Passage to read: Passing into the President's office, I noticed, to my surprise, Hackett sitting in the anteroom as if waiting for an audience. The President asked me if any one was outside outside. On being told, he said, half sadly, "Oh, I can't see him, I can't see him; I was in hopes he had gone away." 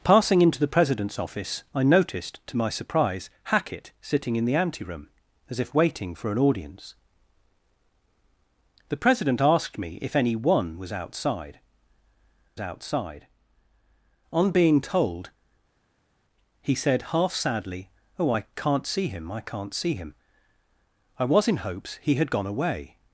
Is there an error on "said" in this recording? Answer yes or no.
no